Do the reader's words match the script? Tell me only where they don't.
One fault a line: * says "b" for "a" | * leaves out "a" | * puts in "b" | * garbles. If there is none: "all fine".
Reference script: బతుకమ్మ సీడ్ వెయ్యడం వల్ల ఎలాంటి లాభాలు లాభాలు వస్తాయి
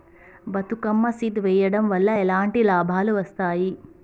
* leaves out "లాభాలు"